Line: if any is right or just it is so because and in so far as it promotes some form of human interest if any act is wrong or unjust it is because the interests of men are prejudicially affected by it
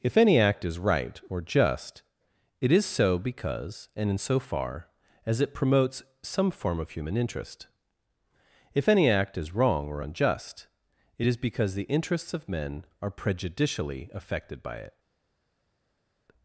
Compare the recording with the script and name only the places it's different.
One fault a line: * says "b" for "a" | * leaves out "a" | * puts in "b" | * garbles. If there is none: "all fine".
* puts in "act"